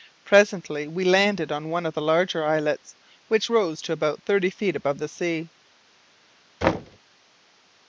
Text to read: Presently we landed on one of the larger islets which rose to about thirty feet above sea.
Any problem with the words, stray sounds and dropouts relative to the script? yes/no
yes